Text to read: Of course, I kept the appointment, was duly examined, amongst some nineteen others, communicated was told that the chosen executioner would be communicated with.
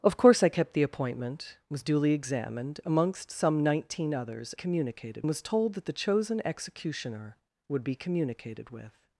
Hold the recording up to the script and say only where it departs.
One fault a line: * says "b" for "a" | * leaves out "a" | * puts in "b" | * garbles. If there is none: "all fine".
all fine